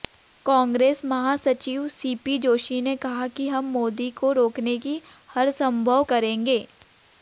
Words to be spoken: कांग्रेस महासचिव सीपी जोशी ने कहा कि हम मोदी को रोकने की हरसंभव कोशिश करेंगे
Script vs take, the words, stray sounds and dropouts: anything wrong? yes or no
yes